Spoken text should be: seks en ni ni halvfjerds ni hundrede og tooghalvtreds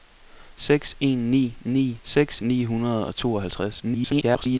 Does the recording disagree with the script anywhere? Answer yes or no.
yes